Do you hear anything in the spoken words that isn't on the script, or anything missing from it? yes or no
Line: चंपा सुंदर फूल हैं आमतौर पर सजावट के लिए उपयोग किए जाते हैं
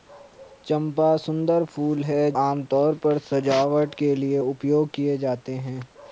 no